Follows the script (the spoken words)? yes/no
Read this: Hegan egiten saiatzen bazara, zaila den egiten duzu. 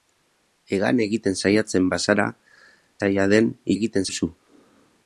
yes